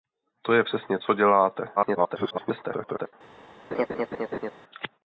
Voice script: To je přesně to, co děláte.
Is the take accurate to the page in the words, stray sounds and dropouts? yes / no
no